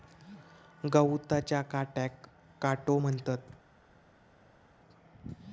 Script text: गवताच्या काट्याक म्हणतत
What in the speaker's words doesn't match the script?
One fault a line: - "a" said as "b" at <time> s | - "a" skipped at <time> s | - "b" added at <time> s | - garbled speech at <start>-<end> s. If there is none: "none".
- "काटो" added at 2.6 s